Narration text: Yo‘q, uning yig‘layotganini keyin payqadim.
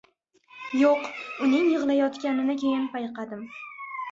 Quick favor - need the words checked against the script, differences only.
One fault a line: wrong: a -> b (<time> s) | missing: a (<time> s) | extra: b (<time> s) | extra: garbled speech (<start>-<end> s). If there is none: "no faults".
no faults